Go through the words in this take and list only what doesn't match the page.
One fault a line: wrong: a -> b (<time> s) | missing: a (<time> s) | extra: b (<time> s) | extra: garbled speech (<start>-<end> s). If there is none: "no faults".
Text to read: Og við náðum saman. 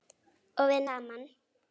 missing: náðum (0.8 s)